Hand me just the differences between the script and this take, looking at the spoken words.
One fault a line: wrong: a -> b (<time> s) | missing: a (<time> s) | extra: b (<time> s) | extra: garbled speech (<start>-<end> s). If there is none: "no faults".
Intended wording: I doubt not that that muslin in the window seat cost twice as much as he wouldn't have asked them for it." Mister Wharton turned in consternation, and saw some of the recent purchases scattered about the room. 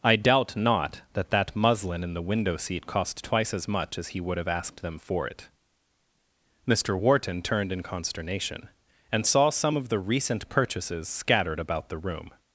wrong: wouldn't -> would (4.2 s)